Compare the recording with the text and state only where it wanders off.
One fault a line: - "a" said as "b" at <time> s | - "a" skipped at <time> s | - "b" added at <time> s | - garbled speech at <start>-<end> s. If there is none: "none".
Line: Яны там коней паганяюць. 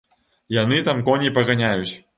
none